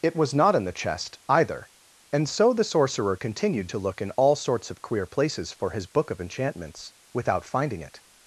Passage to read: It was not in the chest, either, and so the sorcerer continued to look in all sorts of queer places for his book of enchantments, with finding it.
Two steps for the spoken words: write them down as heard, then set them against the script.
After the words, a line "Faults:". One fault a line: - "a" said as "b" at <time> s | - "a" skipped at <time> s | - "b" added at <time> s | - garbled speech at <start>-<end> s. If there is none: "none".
It was not in the chest, either, and so the sorcerer continued to look in all sorts of queer places for his book of enchantments, without finding it.
Faults:
- "with" said as "without" at 7.1 s